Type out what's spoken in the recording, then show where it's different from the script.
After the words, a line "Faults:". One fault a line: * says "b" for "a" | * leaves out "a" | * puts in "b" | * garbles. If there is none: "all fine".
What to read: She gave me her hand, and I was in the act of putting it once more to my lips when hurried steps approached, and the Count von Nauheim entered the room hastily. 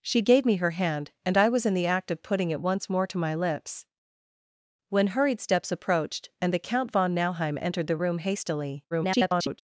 She gave me her hand, and I was in the act of putting it once more to my lips when hurried steps approached, and the Count von Nauheim entered the room hastily. [garbled]
Faults:
* garbles